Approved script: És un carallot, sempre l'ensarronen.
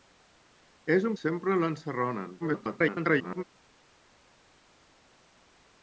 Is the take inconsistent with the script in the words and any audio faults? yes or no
yes